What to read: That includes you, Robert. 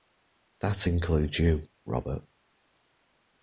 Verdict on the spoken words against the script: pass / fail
pass